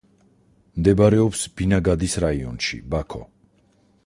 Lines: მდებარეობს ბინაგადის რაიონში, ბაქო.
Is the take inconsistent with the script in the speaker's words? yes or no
no